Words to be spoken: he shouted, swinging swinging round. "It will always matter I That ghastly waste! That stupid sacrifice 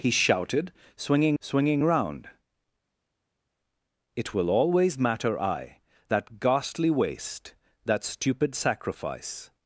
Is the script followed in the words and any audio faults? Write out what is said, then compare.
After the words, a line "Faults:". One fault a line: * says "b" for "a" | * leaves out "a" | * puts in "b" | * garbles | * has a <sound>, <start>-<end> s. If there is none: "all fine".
he shouted, swinging swinging round. "It will always matter I That ghastly waste! That stupid sacrifice
Faults:
all fine